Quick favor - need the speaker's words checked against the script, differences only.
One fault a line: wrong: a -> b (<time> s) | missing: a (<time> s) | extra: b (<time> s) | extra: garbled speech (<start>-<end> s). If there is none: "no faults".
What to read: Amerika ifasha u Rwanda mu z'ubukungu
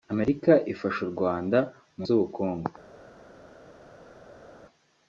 no faults